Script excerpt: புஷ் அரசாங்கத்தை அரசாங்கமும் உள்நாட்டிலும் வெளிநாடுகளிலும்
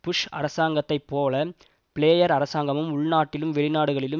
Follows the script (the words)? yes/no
no